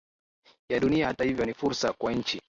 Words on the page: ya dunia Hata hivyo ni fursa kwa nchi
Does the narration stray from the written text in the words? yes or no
no